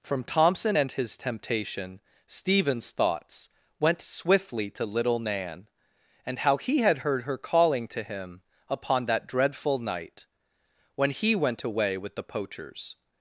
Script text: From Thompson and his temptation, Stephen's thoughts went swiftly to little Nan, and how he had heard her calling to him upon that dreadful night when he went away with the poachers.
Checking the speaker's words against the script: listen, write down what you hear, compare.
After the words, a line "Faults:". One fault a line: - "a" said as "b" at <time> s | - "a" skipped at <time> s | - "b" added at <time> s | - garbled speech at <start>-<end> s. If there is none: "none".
From Thompson and his temptation, Stephen's thoughts went swiftly to little Nan, and how he had heard her calling to him upon that dreadful night when he went away with the poachers.
Faults:
none